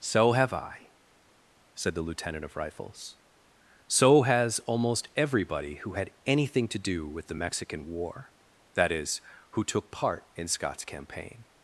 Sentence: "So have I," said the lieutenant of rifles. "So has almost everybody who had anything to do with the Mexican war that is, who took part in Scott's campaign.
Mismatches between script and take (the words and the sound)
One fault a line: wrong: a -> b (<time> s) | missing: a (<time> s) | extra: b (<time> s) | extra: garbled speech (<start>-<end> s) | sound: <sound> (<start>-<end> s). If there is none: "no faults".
no faults